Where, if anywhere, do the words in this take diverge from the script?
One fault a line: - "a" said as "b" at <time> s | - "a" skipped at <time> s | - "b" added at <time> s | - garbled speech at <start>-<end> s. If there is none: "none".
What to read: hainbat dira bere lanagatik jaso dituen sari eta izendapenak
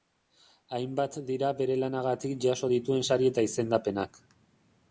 none